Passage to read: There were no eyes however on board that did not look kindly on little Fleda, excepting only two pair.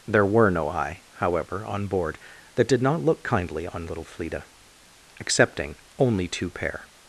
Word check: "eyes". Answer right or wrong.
wrong